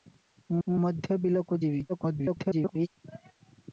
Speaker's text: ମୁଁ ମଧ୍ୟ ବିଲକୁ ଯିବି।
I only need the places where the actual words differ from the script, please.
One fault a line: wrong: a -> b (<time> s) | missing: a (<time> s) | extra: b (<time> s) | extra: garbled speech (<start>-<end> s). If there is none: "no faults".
extra: ମୁଁ (0.7 s)
extra: garbled speech (1.9-2.9 s)